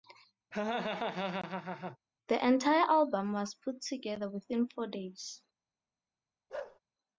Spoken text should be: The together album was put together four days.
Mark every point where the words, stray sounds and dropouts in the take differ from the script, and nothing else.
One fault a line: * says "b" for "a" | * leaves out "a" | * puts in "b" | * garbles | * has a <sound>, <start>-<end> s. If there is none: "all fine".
* has a laugh, 0.5-2.0 s
* says "entire" for "together"
* puts in "within"
* has a bark, 6.5-6.8 s